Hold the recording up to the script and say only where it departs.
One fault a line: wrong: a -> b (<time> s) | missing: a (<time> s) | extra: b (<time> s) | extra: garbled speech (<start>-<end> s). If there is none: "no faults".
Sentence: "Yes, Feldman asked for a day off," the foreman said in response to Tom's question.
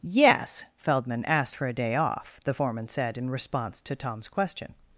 no faults